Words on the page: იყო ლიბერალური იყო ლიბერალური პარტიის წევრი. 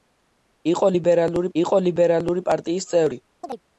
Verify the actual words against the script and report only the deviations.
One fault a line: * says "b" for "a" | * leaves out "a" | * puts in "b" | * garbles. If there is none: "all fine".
all fine